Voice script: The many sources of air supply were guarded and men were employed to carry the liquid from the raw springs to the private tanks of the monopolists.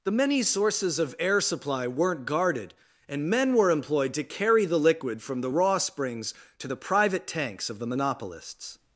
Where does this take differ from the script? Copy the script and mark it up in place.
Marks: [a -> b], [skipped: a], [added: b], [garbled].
The many sources of air supply [were -> weren't] guarded and men were employed to carry the liquid from the raw springs to the private tanks of the monopolists.